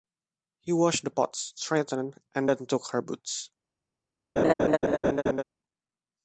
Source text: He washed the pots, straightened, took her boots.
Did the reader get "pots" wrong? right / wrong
right